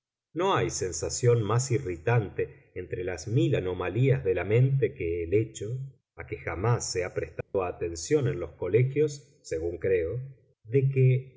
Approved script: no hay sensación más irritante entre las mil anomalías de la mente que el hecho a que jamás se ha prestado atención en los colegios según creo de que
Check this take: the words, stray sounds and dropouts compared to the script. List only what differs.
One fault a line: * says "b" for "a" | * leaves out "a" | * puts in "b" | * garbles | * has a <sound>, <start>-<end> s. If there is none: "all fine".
* has a dropout, 7.4-7.5 s